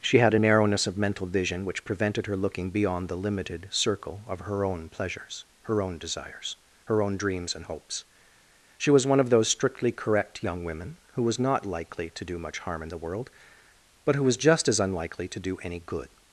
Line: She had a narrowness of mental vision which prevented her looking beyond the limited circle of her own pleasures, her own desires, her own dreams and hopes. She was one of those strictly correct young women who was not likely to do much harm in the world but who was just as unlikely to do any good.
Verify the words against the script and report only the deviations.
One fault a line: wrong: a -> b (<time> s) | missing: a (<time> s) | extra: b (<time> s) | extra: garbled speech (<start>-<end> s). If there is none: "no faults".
no faults